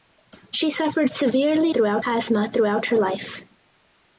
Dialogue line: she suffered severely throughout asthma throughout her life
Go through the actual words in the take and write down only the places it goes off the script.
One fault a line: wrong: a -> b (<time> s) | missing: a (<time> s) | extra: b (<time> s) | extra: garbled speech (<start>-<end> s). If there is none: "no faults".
no faults